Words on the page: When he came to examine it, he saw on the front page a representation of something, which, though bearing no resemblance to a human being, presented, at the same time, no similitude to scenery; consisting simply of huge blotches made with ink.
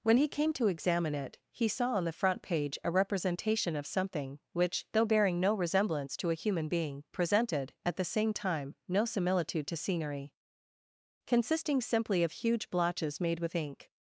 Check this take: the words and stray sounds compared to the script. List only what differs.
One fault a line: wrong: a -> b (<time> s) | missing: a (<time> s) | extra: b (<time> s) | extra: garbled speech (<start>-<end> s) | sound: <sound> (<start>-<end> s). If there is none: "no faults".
no faults